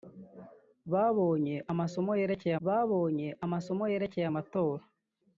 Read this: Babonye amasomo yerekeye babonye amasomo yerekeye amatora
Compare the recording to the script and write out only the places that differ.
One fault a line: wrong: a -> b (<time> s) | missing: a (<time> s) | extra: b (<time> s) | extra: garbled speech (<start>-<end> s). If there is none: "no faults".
no faults